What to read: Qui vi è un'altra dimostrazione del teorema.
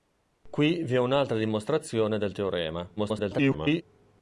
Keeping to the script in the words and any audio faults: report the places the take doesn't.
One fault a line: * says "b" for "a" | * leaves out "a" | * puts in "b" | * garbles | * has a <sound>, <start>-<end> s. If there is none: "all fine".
* garbles